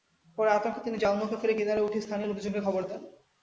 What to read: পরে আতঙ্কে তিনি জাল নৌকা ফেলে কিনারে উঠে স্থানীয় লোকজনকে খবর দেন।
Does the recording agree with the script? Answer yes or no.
yes